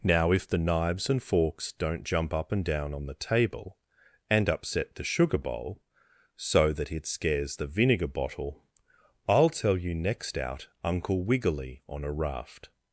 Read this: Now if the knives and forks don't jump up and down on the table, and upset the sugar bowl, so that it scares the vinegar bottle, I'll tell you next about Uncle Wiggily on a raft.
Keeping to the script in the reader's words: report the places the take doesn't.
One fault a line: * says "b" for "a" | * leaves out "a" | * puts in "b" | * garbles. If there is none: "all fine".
* says "out" for "about"